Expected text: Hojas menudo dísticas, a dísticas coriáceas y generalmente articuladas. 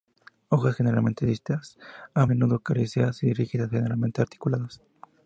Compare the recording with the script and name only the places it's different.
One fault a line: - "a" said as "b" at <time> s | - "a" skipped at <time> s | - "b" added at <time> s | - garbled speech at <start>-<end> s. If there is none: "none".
- "menudo" said as "generalmente" at 0.8 s
- "dísticas" said as "menudo" at 2.2 s
- "rígidas" added at 3.3 s